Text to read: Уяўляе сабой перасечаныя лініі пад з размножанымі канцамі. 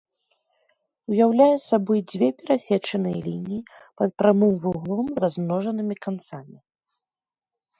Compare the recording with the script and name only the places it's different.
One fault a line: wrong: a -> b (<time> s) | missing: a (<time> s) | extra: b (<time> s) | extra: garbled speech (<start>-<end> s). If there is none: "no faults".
extra: дзве (2.1 s)
extra: прамым вуглом (4.2 s)